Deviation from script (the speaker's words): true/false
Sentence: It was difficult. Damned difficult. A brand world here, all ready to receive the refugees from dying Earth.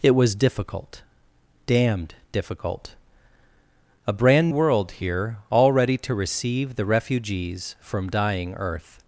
false